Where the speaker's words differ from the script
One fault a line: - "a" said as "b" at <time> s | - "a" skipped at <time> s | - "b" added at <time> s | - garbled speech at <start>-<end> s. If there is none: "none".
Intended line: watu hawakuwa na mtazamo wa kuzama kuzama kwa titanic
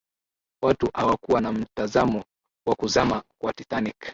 - "kuzama" skipped at 3.2 s